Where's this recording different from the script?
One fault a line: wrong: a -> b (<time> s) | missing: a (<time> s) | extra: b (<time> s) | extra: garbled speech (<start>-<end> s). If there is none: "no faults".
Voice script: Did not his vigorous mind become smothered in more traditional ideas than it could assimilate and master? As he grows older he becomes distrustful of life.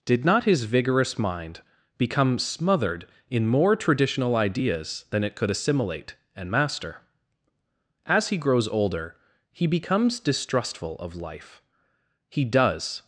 extra: He does (12.3 s)